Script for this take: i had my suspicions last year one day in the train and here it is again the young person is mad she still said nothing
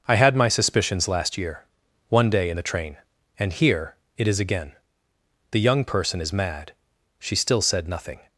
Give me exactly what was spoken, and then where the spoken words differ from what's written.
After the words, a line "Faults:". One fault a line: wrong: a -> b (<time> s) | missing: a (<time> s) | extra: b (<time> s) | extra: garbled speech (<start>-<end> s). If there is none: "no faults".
i had my suspicions last year one day in the train and here it is again the young person is mad she still said nothing
Faults:
no faults